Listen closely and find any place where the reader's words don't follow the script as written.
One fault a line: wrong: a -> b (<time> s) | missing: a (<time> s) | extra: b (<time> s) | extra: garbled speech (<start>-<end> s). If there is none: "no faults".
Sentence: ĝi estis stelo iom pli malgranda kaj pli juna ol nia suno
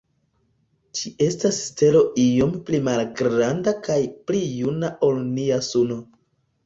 wrong: estis -> estas (1.2 s)